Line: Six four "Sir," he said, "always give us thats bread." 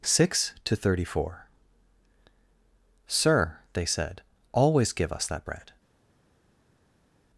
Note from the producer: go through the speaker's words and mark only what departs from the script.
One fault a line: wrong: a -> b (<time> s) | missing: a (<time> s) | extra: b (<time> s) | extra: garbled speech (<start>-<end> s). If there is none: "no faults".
extra: to thirty (0.6 s)
wrong: he -> they (3.7 s)
wrong: thats -> that (5.2 s)